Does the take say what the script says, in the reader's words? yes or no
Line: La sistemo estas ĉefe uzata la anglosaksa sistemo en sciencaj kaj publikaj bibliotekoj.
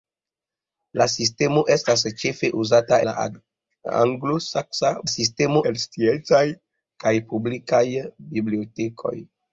yes